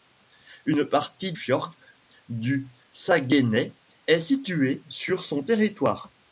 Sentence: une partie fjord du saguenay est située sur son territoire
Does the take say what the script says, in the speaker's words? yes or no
yes